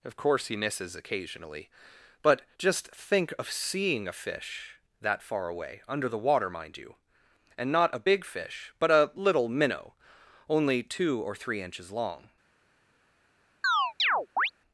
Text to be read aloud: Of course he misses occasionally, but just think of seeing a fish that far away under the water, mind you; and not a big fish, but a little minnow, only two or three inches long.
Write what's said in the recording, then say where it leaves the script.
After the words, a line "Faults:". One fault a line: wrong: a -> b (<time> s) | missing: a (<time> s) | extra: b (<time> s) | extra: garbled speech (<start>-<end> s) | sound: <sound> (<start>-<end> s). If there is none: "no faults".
Of course he misses occasionally, but just think of seeing a fish that far away under the water, mind you; and not a big fish, but a little minnow, only two or three inches long.
Faults:
sound: chirp (13.6-14.5 s)